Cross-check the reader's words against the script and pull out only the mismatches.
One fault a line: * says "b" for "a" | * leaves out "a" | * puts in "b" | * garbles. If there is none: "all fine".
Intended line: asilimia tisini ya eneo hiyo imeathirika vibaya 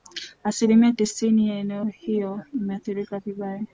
all fine